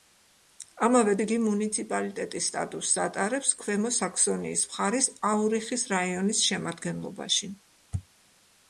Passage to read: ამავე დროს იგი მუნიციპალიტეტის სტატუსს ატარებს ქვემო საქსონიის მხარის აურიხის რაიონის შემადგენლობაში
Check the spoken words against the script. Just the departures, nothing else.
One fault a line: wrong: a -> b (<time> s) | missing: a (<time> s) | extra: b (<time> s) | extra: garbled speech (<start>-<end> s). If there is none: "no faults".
missing: დროს (1.1 s)